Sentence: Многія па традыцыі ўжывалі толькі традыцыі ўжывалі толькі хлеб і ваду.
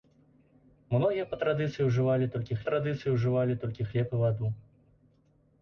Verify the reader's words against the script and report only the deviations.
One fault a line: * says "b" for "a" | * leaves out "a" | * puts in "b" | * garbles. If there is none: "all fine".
all fine